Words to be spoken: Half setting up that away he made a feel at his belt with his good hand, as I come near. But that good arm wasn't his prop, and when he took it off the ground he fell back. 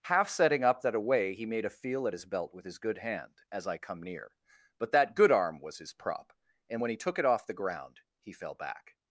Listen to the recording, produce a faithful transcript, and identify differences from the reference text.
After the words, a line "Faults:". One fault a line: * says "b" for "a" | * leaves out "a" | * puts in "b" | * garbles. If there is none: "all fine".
Half setting up that away he made a feel at his belt with his good hand, as I come near. But that good arm was his prop, and when he took it off the ground he fell back.
Faults:
* says "was" for "wasn't"